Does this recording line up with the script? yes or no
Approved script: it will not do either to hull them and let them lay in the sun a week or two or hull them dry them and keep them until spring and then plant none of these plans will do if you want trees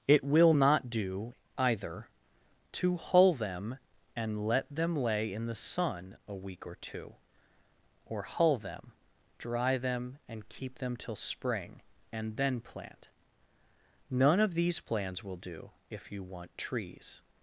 no